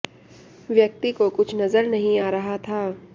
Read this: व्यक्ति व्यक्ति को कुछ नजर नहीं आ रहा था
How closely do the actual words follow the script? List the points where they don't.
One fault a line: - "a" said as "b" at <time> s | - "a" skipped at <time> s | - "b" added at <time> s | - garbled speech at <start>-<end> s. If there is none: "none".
- "व्यक्ति" skipped at 1.1 s